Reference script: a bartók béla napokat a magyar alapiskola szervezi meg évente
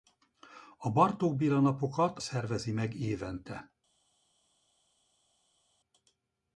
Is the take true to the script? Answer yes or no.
no